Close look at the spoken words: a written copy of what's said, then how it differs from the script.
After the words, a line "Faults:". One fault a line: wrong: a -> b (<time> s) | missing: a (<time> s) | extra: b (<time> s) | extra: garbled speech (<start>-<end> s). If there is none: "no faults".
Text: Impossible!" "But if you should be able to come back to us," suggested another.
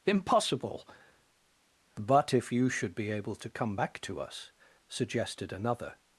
Impossible!" "But if you should be able to come back to us," suggested another.
Faults:
no faults